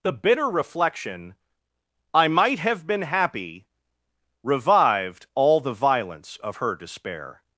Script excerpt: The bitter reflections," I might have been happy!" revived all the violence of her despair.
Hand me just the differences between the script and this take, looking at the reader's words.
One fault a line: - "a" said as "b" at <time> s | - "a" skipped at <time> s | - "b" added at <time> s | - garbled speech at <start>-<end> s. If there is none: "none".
- "reflections" said as "reflection" at 0.5 s